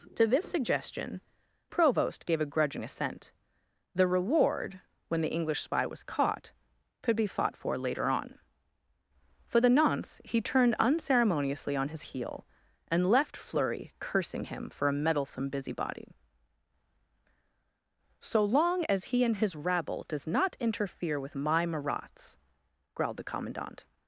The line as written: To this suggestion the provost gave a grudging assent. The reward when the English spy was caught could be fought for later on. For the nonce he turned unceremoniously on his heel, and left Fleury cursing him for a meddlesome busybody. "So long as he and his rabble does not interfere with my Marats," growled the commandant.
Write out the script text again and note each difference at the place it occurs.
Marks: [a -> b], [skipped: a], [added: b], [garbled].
To this suggestion [skipped: the] provost gave a grudging assent. The reward when the English spy was caught could be fought for later on. For the nonce he turned unceremoniously on his heel, and left Fleury cursing him for a meddlesome busybody. "So long as he and his rabble does not interfere with my Marats," growled the commandant.